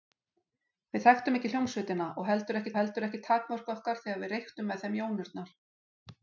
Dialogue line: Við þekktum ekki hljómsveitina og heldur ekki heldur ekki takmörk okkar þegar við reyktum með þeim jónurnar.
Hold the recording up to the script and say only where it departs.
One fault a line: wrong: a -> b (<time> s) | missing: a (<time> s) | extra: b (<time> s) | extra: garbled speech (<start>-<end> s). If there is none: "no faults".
no faults